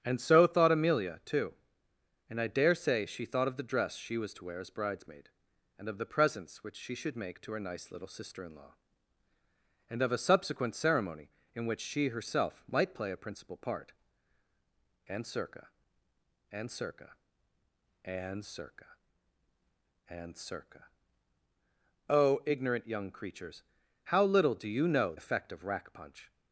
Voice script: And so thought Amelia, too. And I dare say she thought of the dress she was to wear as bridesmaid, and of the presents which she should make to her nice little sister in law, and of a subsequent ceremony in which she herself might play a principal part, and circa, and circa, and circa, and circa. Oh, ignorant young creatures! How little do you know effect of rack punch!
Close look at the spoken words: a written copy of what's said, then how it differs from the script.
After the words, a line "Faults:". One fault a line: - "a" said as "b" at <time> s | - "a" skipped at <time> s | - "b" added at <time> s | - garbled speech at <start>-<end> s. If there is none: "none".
And so thought Amelia, too. And I dare say she thought of the dress she was to wear as bridesmaid, and of the presents which she should make to her nice little sister in law, and of a subsequent ceremony in which she herself might play a principal part, and circa, and circa, and circa, and circa. Oh, ignorant young creatures! How little do you know effect of rack punch!
Faults:
none